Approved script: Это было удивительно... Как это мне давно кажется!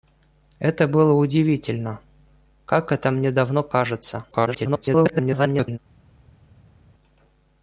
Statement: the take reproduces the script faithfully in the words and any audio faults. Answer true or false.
false